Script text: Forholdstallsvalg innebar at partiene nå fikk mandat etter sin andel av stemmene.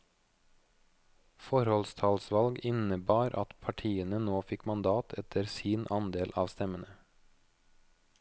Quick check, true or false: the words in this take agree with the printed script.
true